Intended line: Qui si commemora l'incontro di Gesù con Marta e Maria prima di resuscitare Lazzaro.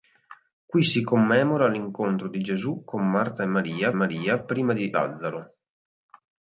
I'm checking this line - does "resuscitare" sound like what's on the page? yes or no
no